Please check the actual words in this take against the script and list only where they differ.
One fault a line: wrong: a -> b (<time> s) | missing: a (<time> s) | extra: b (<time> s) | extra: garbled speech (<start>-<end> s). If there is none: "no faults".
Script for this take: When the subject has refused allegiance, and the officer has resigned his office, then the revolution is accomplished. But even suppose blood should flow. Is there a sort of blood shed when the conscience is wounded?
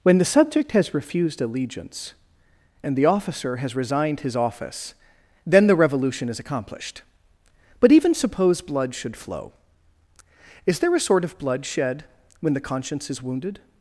no faults